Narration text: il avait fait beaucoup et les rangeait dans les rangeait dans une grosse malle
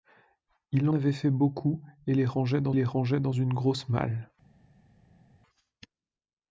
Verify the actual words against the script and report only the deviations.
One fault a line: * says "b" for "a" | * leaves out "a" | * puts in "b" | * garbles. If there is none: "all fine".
all fine